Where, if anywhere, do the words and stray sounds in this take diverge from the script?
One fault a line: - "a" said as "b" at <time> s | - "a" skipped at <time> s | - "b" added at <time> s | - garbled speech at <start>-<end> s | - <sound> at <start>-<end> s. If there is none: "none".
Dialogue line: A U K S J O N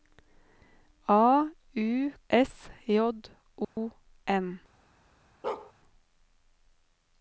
- "K" skipped at 2.1 s
- dropout at 3.6-3.8 s
- bark at 5.4-5.7 s